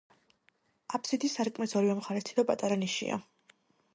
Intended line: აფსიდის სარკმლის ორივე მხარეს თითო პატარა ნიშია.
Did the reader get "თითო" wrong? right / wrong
right